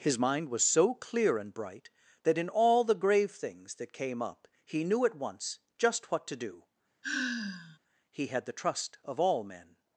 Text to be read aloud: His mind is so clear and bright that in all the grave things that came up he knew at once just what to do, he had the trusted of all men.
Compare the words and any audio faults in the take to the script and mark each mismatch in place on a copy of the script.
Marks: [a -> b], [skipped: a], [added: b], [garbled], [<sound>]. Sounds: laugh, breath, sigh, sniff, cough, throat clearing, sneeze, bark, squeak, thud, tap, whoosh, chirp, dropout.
His mind [is -> was] so clear and bright that in all the grave things that came up he knew at once just what to do, [sigh] he had the [trusted -> trust] of all men.